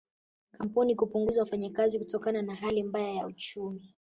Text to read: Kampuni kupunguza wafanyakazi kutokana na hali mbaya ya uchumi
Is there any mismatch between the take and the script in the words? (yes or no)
no